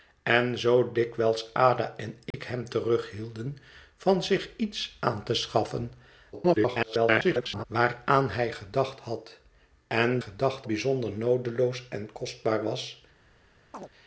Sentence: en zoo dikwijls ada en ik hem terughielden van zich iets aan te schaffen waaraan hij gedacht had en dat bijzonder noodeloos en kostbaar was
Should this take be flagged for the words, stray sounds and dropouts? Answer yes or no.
yes